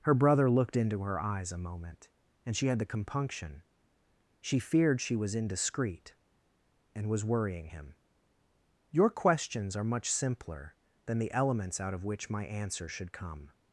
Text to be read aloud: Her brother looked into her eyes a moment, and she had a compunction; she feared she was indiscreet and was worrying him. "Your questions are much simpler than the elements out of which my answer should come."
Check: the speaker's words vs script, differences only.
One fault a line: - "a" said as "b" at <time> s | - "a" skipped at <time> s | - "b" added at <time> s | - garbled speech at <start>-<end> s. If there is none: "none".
- "a" said as "the" at 2.8 s